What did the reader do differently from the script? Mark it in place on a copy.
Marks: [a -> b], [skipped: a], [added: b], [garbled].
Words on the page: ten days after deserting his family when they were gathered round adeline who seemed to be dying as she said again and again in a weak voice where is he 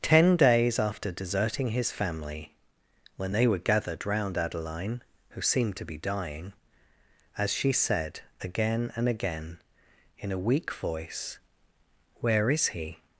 ten days after deserting his family when they were gathered round adeline who seemed to be dying as she said again and again in a weak voice where is he